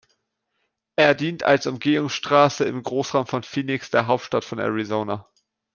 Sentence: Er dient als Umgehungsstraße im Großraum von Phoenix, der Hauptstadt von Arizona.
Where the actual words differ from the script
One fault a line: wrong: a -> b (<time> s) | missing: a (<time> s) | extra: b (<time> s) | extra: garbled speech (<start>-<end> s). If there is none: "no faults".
no faults